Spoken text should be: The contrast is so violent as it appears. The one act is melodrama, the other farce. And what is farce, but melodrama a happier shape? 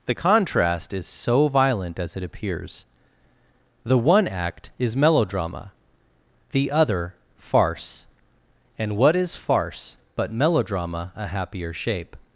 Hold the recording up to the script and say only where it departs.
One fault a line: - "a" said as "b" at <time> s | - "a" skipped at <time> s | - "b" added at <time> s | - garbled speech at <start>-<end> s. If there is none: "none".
none